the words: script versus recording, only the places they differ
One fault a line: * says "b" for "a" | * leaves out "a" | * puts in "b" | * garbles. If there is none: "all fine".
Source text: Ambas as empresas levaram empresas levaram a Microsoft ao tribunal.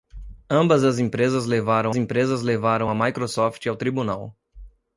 all fine